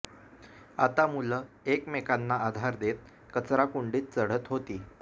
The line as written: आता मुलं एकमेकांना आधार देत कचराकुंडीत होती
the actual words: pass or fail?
fail